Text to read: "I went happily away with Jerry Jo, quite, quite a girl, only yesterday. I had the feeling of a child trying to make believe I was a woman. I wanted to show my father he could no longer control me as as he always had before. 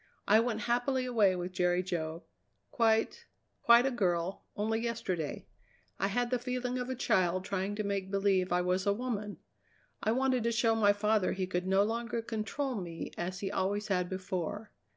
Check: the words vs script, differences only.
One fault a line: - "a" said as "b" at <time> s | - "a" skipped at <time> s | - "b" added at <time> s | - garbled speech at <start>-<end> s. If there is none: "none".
- "as" skipped at 13.4 s